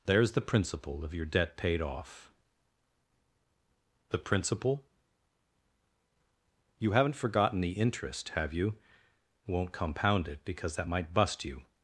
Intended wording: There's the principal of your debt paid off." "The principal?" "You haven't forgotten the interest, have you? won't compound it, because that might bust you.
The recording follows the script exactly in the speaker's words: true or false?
true